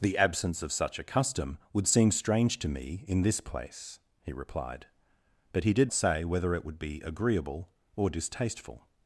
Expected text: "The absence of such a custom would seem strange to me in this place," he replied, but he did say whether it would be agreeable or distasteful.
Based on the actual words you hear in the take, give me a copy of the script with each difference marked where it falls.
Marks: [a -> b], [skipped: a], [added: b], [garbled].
"The absence of such a custom would seem strange to me in this place," he replied, but he did say whether it would be agreeable or distasteful.